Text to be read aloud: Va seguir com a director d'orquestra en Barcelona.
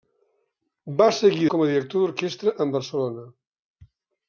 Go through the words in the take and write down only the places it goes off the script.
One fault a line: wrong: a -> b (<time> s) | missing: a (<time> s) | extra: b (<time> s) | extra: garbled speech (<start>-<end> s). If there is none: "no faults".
no faults